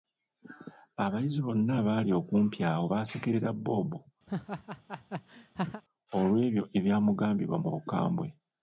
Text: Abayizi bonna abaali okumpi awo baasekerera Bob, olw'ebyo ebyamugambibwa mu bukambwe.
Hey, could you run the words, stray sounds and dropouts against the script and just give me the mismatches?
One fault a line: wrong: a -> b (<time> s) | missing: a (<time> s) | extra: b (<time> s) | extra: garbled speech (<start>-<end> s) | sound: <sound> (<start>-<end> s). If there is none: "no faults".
sound: laugh (4.3-5.8 s)